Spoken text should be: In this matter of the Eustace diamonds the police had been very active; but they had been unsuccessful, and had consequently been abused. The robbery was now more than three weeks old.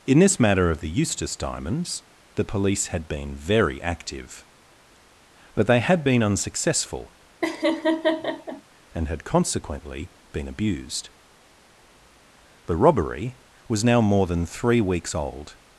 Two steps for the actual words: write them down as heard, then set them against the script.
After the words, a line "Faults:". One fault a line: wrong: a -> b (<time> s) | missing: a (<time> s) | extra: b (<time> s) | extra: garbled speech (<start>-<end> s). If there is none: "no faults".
In this matter of the Eustace diamonds the police had been very active; but they had been unsuccessful, and had consequently been abused. The robbery was now more than three weeks old.
Faults:
no faults